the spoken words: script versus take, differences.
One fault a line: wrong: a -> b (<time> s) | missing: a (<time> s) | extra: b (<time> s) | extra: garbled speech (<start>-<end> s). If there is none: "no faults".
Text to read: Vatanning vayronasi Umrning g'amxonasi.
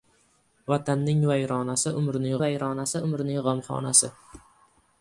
extra: vayronasi Umrning (2.4 s)